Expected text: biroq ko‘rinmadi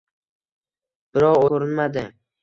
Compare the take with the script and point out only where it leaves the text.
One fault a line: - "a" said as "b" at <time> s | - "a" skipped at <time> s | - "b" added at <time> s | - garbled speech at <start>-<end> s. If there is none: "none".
none